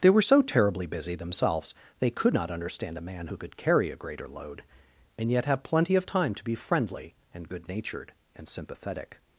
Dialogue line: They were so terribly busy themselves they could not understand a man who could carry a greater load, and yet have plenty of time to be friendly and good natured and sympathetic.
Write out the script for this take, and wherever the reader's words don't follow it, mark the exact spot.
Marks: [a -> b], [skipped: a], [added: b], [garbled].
They were so terribly busy themselves they could not understand a man who could carry a greater load, and yet have plenty of time to be friendly and good natured and sympathetic.